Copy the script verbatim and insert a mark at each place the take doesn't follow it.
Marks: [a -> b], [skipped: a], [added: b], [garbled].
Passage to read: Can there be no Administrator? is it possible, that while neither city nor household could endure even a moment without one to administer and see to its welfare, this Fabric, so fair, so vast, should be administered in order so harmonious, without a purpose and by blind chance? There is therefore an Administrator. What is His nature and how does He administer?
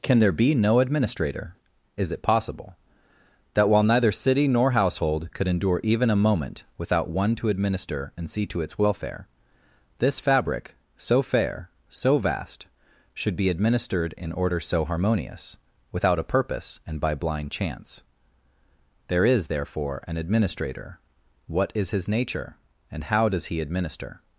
Can there be no Administrator? is it possible, that while neither city nor household could endure even a moment without one to administer and see to its welfare, this Fabric, so fair, so vast, should be administered in order so harmonious, without a purpose and by blind chance? There is therefore an Administrator. What is His nature and how does He administer?